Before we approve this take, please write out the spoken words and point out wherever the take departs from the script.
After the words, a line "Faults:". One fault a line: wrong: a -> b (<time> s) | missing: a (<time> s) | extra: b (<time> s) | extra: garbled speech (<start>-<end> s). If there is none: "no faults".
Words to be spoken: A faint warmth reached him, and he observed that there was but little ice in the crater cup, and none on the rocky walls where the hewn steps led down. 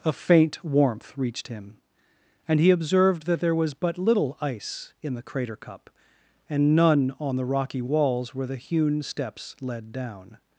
A faint warmth reached him, and he observed that there was but little ice in the crater cup, and none on the rocky walls where the hewn steps led down.
Faults:
no faults